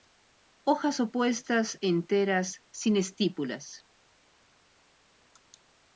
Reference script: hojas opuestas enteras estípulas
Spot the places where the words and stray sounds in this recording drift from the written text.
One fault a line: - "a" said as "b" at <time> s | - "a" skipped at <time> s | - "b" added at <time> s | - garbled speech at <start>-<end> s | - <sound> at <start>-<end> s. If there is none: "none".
- "sin" added at 2.7 s